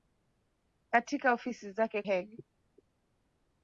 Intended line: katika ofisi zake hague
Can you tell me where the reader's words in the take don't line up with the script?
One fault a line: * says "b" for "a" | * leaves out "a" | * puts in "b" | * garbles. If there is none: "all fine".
all fine